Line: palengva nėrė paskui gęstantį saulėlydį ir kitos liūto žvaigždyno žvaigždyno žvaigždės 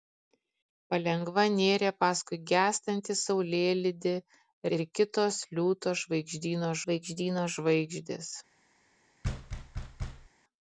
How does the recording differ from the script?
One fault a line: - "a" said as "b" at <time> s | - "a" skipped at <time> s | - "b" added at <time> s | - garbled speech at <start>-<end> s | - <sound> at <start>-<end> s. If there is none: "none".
- thud at 9.2-10.3 s